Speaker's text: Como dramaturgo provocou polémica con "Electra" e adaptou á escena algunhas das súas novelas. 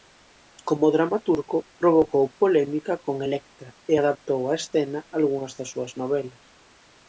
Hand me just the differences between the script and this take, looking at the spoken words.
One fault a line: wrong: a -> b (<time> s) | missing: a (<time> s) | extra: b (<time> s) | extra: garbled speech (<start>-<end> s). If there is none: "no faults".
no faults